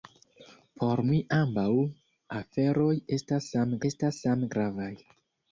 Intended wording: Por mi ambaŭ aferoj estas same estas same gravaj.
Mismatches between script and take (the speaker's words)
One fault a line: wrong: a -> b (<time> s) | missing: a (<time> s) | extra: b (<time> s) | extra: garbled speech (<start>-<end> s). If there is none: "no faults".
no faults